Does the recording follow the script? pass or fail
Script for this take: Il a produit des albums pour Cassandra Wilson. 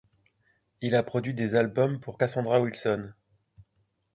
pass